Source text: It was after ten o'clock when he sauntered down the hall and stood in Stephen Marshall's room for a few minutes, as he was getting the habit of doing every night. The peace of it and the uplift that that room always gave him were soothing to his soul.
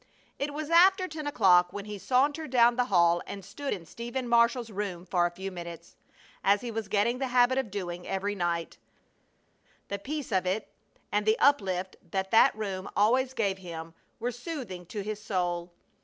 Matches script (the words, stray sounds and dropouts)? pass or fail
pass